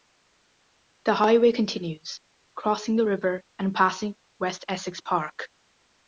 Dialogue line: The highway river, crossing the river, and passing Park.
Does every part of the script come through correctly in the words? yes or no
no